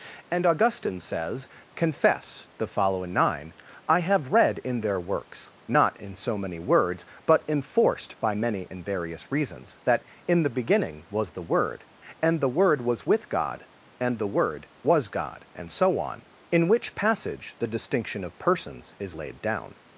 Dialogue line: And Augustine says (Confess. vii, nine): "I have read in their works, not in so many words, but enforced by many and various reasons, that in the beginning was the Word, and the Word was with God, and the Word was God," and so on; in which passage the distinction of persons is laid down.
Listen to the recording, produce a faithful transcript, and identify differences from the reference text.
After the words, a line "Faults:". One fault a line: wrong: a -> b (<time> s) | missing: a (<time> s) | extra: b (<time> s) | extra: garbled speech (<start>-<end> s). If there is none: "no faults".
And Augustine says (Confess. the following, nine): "I have read in their works, not in so many words, but enforced by many and various reasons, that in the beginning was the Word, and the Word was with God, and the Word was God," and so on; in which passage the distinction of persons is laid down.
Faults:
wrong: vii -> the following (2.6 s)